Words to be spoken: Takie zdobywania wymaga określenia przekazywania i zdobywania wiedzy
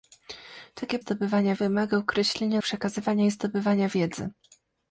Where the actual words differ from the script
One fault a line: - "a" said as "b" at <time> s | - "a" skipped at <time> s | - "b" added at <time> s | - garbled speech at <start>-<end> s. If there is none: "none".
none